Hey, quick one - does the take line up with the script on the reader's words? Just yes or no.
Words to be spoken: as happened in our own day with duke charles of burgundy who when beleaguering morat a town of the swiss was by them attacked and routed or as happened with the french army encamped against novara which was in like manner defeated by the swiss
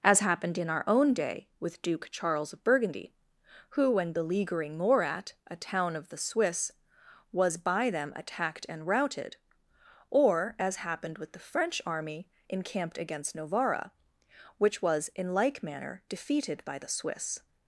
yes